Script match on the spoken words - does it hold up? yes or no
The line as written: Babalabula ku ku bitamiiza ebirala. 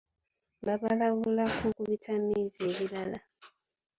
yes